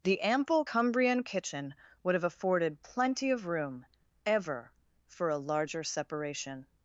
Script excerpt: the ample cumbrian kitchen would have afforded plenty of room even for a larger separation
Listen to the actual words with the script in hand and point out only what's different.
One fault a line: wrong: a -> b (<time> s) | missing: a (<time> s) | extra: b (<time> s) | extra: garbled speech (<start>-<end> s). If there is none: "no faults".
wrong: even -> ever (4.3 s)